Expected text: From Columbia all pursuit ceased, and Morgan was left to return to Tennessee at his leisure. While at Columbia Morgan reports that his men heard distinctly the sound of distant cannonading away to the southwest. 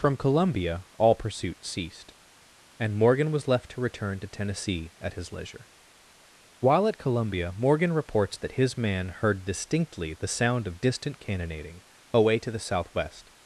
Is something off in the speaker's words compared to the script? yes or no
yes